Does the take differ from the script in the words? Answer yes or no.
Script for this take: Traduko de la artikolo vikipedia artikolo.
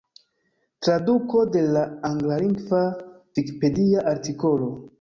yes